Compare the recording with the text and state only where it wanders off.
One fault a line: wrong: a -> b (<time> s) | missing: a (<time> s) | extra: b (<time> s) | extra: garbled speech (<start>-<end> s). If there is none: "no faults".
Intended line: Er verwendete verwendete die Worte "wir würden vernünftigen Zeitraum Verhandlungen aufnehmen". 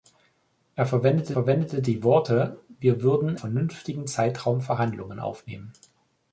no faults